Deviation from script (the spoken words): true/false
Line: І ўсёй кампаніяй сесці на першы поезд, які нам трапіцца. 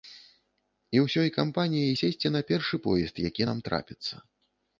false